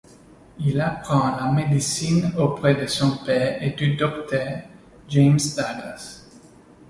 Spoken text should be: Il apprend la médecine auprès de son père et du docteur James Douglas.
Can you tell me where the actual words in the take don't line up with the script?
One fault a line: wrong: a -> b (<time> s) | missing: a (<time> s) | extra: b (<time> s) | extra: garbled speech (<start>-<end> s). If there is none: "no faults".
no faults